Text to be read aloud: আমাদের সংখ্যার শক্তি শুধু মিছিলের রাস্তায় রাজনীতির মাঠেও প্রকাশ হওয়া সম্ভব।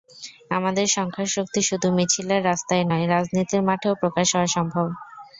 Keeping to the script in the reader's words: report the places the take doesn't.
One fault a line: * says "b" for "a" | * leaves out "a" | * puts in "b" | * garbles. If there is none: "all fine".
* puts in "নয়"